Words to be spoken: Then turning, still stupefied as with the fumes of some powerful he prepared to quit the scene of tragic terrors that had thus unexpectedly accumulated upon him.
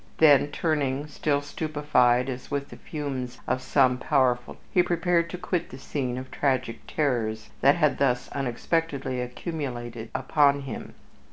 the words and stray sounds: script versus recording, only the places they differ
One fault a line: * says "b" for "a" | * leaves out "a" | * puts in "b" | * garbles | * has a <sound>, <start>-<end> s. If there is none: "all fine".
all fine